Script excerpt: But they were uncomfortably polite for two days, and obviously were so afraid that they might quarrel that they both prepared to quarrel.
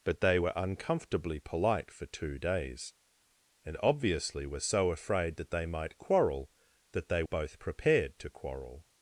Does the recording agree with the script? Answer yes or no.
yes